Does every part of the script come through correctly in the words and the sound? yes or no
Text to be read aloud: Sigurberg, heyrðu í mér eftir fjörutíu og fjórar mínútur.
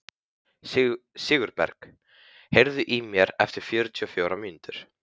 yes